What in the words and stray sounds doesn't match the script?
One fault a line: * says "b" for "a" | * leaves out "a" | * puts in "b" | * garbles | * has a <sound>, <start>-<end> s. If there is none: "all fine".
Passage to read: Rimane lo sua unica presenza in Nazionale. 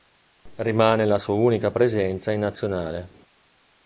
* says "la" for "lo"